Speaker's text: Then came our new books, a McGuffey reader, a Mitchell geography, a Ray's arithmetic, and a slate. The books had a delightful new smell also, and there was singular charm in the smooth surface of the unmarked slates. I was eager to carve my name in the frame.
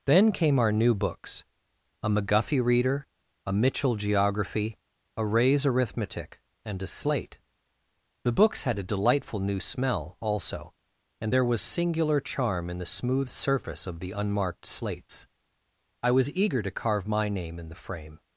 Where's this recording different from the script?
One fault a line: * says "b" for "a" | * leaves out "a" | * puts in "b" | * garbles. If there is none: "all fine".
all fine